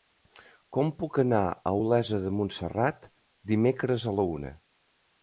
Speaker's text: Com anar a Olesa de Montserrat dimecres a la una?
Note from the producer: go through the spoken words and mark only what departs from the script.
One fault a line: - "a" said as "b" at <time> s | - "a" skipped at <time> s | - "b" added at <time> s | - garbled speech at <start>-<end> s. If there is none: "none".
- "puc" added at 1.0 s